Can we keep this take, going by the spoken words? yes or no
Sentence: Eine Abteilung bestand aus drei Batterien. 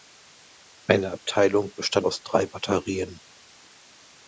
yes